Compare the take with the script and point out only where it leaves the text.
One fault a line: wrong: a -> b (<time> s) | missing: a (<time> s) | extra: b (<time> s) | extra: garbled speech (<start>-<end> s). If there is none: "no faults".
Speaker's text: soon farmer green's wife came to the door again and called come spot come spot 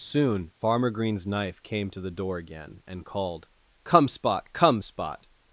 wrong: wife -> knife (1.3 s)